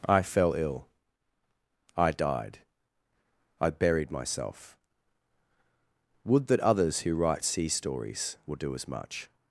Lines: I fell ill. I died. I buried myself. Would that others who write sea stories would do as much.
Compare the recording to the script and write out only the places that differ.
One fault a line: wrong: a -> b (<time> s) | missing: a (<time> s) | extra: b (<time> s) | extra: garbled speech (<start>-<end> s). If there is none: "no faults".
wrong: would -> will (8.4 s)